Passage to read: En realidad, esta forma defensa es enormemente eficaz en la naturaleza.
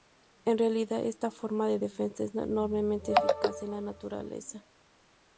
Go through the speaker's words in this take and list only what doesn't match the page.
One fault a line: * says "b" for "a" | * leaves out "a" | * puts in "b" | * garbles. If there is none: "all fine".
* puts in "de"